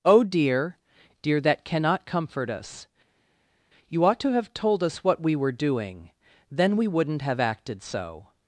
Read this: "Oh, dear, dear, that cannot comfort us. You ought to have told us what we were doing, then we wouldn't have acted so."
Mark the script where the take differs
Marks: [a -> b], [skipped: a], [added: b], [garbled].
"Oh, dear, dear, that cannot comfort us. You ought to have told us what we were doing, then we wouldn't have acted so."